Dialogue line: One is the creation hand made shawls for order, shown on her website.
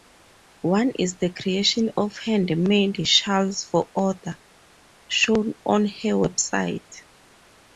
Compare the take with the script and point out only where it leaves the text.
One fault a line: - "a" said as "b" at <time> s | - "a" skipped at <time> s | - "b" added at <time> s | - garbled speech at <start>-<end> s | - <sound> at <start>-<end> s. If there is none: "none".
- "of" added at 1.9 s